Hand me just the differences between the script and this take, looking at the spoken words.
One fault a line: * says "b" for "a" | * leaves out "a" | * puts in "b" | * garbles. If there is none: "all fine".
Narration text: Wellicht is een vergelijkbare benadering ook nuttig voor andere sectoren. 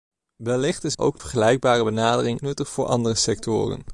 * says "ook" for "een"
* leaves out "ook"